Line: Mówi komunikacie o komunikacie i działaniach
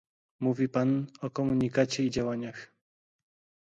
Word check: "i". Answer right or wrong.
right